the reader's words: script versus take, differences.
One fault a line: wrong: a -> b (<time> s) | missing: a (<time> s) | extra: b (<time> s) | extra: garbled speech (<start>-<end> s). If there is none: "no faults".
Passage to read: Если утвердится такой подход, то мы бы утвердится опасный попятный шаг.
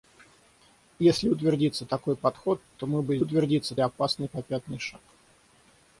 no faults